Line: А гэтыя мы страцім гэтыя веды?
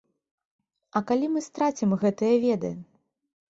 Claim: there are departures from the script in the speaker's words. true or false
true